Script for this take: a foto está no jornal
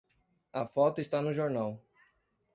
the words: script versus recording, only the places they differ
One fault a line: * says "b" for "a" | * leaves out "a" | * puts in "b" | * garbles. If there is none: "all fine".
all fine